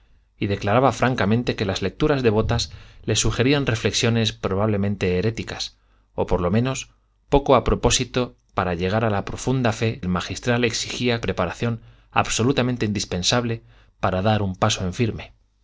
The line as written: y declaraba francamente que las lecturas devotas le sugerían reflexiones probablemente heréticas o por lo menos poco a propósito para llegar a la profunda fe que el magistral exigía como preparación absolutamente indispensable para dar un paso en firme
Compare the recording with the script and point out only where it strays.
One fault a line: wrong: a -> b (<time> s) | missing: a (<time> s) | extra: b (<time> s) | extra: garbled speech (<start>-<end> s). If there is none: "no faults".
missing: que (10.0 s)
missing: como (11.2 s)